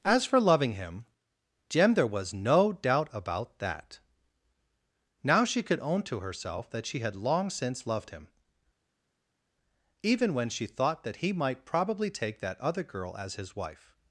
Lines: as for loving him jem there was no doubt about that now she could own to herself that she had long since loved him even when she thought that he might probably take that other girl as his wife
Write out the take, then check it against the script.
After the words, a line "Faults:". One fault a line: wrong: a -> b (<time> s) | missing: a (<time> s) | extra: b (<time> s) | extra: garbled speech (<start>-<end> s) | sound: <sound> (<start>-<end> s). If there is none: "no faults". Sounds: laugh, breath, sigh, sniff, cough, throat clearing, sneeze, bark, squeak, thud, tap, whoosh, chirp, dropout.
as for loving him jem there was no doubt about that now she could own to herself that she had long since loved him even when she thought that he might probably take that other girl as his wife
Faults:
no faults